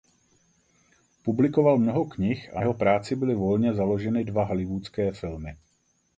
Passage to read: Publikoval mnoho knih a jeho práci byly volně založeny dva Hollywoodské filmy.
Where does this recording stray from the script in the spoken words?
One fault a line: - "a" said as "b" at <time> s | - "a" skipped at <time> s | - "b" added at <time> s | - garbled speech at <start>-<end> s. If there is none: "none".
none